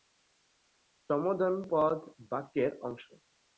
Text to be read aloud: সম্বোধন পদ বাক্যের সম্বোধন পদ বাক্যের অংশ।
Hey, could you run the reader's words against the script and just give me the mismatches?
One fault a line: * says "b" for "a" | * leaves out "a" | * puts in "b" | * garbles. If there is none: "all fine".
* leaves out "সম্বোধন পদ বাক্যের"